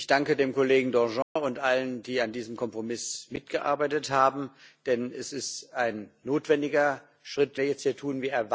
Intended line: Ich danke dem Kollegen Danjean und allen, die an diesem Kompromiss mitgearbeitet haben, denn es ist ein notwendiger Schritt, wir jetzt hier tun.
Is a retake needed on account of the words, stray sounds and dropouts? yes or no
yes